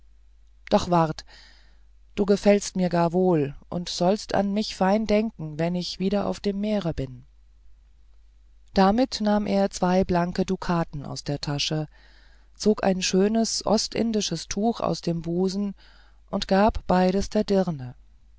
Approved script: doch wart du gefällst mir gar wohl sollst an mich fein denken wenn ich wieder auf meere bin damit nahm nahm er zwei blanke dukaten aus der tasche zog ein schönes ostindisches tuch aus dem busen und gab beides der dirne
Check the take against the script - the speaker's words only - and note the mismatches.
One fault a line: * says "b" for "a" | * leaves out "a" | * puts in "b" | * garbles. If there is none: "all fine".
* puts in "und"
* puts in "dem"
* leaves out "nahm"